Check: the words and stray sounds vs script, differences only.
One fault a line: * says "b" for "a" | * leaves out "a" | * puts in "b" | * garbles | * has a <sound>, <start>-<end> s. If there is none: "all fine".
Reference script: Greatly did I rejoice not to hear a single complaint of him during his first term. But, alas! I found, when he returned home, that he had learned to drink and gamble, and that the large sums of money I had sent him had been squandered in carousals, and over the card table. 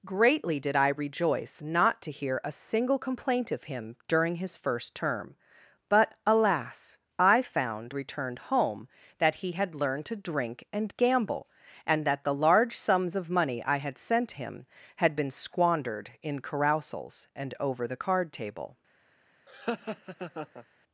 * leaves out "when he"
* has a laugh, 19.5-20.7 s